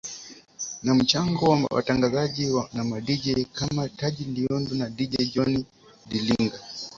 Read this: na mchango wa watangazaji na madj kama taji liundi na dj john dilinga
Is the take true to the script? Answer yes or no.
yes